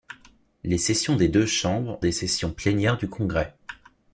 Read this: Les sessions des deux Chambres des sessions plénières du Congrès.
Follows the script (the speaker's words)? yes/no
yes